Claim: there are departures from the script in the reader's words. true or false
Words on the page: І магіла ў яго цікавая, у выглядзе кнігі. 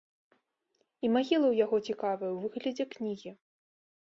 false